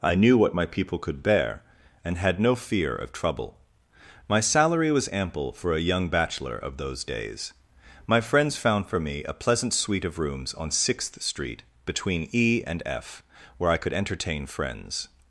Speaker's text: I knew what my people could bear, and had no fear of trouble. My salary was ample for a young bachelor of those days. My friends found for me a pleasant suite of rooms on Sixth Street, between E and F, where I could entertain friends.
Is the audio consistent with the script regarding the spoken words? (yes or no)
yes